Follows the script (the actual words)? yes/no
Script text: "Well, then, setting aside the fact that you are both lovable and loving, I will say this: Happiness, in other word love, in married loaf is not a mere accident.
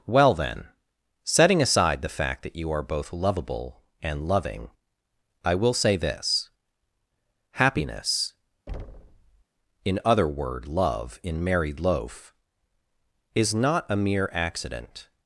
yes